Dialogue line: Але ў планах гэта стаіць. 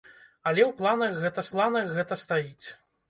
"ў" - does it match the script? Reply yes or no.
yes